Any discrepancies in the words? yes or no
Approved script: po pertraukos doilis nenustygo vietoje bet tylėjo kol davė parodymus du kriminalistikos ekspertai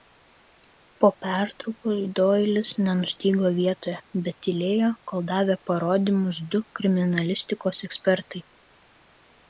no